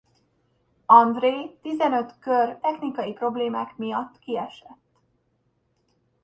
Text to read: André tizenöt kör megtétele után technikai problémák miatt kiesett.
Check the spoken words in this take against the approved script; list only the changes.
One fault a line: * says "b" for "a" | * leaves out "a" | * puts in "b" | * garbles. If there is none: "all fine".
* leaves out "megtétele után"